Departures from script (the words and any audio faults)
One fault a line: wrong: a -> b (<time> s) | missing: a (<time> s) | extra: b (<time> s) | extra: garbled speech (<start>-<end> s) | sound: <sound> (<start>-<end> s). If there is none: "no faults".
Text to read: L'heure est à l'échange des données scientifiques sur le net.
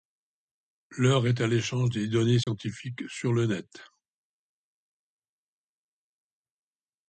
sound: dropout (2.4-2.5 s)